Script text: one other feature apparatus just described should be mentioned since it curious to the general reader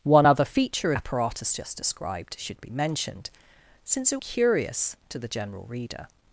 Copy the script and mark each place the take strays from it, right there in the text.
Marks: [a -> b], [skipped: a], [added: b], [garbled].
one other feature apparatus just described should be mentioned since it curious to the general reader